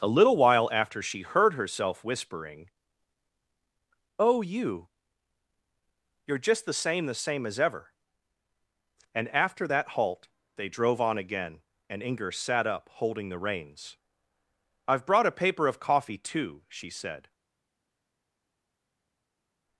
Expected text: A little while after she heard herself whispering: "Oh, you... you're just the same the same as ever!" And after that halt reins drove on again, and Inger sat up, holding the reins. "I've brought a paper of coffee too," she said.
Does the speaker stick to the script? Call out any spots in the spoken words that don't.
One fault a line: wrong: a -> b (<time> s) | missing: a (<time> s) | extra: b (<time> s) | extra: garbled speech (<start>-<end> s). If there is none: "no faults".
wrong: reins -> they (10.6 s)